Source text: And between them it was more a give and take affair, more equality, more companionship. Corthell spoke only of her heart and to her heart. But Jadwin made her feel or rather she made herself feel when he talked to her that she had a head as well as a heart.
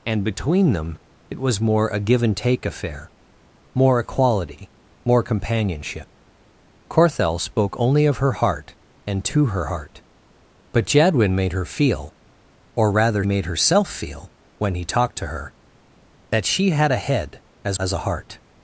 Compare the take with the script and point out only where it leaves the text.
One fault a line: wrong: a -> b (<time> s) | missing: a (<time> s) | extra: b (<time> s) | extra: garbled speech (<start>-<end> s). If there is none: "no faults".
missing: she (13.2 s)
missing: well (17.8 s)